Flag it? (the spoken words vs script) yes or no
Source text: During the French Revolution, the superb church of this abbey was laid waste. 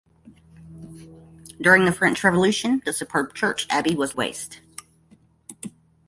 yes